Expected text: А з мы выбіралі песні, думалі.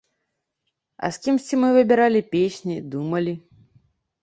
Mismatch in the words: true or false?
true